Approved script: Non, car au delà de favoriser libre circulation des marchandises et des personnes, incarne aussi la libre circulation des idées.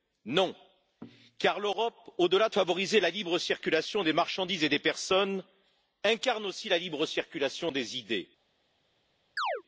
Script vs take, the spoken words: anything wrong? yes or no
yes